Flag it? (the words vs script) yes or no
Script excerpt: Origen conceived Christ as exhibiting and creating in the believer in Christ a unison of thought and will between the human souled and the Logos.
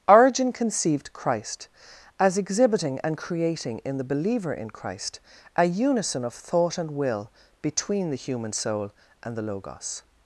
yes